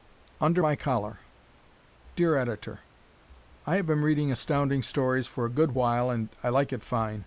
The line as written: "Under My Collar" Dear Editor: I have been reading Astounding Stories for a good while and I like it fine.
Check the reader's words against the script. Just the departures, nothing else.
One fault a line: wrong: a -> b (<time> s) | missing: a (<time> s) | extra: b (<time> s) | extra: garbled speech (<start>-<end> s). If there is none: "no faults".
no faults